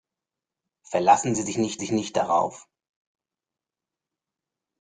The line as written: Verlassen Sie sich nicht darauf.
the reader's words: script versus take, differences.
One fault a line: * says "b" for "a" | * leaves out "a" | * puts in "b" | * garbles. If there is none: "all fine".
* puts in "sich nicht"